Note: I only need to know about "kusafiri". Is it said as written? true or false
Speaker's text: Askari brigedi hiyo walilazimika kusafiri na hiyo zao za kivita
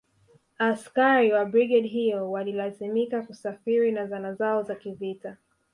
true